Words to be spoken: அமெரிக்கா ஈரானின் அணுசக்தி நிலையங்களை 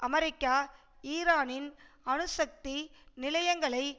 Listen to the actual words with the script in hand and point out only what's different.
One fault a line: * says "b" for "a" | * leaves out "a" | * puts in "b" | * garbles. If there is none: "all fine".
all fine